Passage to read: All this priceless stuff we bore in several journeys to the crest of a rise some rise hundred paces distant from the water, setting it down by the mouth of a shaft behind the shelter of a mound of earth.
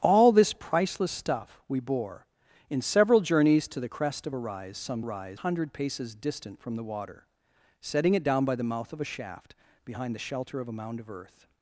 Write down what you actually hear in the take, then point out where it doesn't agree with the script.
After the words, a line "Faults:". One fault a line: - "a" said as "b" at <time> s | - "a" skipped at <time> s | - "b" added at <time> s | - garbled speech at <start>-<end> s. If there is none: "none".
All this priceless stuff we bore in several journeys to the crest of a rise some rise hundred paces distant from the water, setting it down by the mouth of a shaft behind the shelter of a mound of earth.
Faults:
none